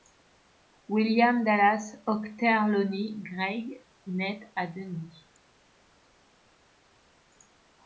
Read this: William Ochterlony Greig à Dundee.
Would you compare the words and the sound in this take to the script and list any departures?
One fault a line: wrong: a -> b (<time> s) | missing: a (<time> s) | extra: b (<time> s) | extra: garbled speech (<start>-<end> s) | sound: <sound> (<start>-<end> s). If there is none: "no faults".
extra: Dallas (1.4 s)
extra: naît (4.1 s)